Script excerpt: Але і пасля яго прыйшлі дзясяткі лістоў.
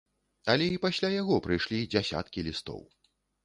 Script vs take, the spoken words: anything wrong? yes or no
no